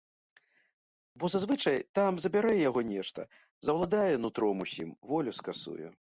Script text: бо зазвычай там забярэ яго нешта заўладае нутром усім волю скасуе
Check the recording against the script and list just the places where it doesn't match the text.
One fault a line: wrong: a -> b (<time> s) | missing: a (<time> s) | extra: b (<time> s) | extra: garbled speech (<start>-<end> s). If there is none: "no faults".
no faults